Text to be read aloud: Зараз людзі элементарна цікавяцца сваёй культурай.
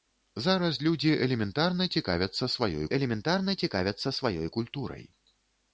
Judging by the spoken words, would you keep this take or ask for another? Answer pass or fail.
fail